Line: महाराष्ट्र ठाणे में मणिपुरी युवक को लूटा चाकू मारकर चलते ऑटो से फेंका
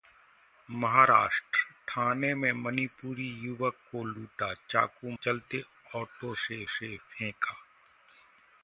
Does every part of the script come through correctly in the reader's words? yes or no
no